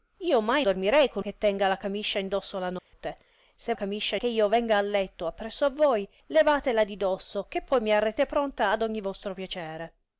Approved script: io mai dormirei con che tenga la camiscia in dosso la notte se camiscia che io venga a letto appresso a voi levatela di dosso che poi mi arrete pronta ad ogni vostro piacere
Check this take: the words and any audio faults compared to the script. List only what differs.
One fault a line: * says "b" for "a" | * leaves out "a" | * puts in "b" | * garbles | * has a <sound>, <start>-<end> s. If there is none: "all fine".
* has a dropout, 2.8-2.9 s